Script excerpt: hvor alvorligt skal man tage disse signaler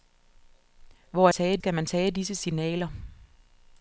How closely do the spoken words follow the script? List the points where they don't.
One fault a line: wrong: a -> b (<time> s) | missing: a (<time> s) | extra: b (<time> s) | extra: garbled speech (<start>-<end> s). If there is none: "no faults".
wrong: alvorligt -> tage (1.3 s)